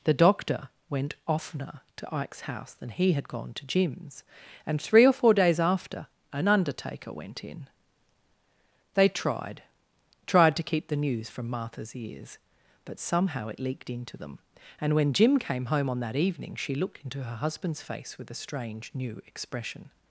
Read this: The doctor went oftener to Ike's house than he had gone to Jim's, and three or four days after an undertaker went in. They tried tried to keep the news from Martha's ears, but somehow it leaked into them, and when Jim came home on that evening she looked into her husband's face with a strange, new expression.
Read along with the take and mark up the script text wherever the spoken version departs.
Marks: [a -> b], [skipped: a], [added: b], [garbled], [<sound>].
The doctor went oftener to Ike's house than he had gone to Jim's, and three or four days after an undertaker went in. They tried tried to keep the news from Martha's ears, but somehow it leaked into them, and when Jim came home on that evening she looked into her husband's face with a strange, new expression.